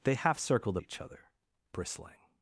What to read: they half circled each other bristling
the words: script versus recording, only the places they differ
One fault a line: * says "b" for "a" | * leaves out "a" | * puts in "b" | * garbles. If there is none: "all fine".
all fine